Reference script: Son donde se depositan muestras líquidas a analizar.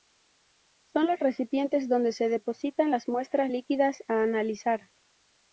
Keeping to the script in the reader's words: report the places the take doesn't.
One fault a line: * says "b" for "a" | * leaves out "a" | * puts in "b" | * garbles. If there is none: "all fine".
* puts in "los recipientes"
* puts in "las"